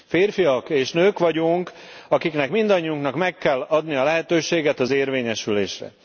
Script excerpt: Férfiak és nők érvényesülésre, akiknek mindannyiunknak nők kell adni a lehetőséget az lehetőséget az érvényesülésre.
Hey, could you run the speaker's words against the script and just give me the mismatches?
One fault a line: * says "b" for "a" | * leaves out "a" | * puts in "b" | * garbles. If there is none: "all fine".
* says "vagyunk" for "érvényesülésre"
* says "meg" for "nők"
* leaves out "lehetőséget az"